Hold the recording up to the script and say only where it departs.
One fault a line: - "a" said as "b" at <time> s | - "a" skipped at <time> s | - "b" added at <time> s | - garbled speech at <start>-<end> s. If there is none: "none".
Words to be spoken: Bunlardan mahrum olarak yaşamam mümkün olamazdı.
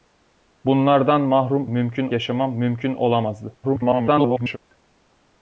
- "olarak" said as "mümkün" at 1.7 s
- garbled speech at 3.6-4.6 s